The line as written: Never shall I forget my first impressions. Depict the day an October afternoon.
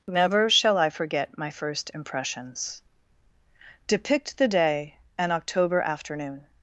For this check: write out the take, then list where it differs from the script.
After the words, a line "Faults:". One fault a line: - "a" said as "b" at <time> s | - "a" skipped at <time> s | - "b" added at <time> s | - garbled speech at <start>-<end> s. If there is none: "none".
Never shall I forget my first impressions. Depict the day an October afternoon.
Faults:
none